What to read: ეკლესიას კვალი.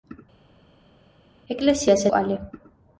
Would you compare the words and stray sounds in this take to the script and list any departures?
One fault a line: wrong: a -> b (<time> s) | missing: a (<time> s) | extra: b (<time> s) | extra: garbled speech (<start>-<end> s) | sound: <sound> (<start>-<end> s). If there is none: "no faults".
no faults